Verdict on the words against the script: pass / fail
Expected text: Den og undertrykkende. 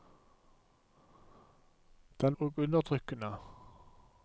pass